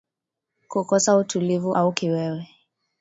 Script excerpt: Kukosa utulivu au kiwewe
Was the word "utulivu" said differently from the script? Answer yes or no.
no